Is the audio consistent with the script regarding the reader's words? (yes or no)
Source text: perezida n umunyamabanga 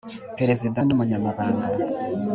yes